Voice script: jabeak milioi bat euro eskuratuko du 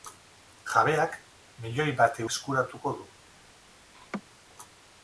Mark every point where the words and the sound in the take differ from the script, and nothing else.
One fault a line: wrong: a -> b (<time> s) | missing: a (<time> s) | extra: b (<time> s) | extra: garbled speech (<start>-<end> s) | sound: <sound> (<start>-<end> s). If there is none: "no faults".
missing: euro (2.2 s)
sound: laugh (3.9-4.2 s)